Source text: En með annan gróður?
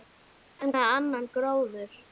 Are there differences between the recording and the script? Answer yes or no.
no